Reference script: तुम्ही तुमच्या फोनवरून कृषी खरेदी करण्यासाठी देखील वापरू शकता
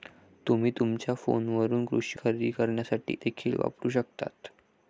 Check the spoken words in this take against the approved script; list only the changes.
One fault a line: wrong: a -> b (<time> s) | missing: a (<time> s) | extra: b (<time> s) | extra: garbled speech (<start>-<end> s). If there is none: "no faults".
no faults